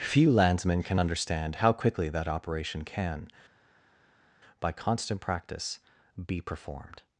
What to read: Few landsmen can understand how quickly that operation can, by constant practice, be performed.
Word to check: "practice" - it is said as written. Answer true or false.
true